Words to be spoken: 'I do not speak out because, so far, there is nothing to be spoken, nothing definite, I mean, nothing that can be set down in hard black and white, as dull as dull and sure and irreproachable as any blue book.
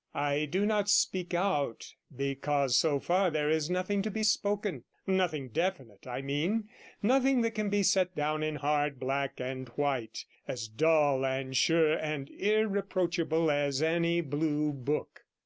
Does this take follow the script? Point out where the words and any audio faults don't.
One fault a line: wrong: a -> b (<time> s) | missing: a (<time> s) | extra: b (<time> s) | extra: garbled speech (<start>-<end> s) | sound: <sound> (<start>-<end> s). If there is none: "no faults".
missing: as dull (11.2 s)